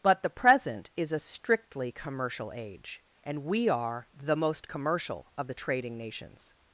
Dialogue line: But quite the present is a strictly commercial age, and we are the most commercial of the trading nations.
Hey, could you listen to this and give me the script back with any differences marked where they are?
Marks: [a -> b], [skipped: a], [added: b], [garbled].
But [skipped: quite] the present is a strictly commercial age, and we are the most commercial of the trading nations.